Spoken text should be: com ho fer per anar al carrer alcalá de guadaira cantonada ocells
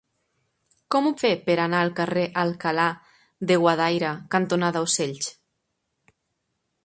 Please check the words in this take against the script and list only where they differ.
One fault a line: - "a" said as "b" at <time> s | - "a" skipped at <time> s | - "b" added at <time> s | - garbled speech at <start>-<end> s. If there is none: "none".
none